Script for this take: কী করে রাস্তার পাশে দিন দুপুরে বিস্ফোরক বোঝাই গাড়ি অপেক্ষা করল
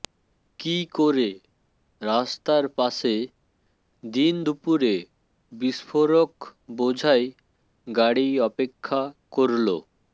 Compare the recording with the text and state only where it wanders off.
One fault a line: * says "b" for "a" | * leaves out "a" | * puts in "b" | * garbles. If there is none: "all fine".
all fine